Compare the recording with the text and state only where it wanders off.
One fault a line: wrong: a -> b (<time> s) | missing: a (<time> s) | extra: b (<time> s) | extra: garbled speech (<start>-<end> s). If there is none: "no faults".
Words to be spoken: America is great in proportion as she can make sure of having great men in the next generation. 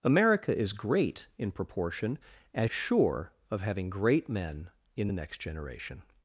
missing: she can make (2.7 s)